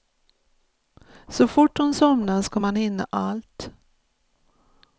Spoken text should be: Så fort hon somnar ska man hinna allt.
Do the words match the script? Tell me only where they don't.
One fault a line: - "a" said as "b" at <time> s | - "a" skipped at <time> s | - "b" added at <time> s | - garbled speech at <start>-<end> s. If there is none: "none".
none